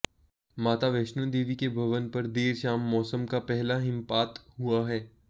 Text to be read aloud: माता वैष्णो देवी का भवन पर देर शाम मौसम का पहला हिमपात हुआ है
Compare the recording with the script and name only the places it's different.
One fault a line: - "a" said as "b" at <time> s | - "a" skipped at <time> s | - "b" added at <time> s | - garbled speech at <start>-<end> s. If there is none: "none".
- "का" said as "के" at 1.5 s